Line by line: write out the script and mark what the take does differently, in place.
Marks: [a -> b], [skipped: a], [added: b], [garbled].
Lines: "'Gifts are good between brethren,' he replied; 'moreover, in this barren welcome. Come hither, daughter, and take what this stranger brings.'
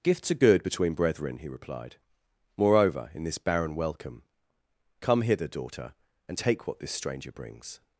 "'Gifts are good between brethren,' he replied; 'moreover, in this barren welcome. Come hither, daughter, and take what this stranger brings.'